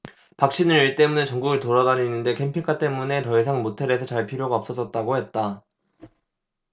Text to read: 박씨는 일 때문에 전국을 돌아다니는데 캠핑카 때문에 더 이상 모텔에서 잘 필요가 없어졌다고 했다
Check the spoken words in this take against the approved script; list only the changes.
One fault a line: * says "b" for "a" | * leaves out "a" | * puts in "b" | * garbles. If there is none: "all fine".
all fine